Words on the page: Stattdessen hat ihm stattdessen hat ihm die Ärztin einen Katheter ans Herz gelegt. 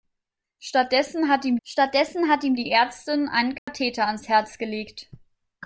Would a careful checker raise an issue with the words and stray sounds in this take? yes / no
yes